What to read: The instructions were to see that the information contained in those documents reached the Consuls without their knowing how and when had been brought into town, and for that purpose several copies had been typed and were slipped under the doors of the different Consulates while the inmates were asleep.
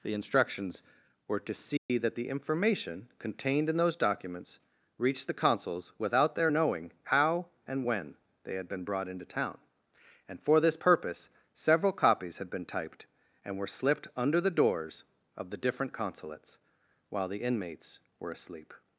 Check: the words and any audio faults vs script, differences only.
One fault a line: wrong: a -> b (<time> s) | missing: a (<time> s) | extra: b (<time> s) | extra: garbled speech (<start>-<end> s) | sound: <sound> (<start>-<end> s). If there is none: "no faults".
sound: dropout (1.8-1.9 s)
extra: they (8.4 s)
wrong: that -> this (10.6 s)